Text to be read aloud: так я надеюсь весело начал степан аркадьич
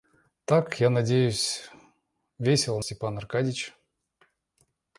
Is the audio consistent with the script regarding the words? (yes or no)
no